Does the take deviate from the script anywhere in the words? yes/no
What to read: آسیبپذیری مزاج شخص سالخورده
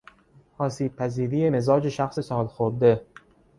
no